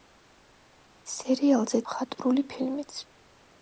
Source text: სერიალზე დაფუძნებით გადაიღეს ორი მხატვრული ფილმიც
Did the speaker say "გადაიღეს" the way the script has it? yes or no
no